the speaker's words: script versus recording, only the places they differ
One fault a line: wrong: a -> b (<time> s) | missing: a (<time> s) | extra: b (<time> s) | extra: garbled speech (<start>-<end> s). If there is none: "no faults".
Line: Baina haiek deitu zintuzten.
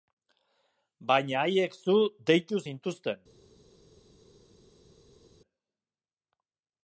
extra: zu (1.8 s)